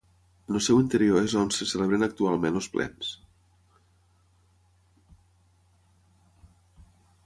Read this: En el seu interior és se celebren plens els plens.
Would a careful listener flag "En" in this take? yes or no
no